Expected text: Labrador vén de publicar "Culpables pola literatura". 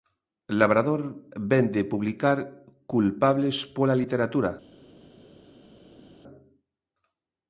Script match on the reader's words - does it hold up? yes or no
yes